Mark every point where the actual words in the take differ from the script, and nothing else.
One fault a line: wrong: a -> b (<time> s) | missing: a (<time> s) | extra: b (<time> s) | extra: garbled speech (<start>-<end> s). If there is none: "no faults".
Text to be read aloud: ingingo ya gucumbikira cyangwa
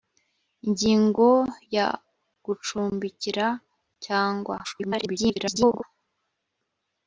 extra: garbled speech (4.6-5.8 s)